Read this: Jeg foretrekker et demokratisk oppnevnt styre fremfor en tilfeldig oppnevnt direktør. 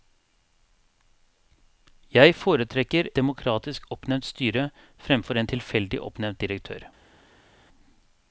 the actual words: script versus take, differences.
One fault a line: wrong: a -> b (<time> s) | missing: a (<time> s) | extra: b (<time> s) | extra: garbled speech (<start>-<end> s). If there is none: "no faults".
missing: et (3.1 s)